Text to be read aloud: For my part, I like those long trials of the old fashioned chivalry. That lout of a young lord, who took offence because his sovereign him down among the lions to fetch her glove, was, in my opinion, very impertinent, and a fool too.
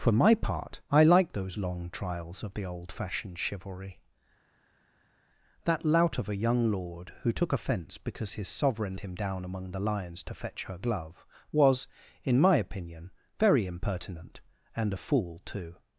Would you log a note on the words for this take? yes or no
no